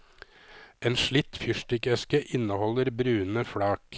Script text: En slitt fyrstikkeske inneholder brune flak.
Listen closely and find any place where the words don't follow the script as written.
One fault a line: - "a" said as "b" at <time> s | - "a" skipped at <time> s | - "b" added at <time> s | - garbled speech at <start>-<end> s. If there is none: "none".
none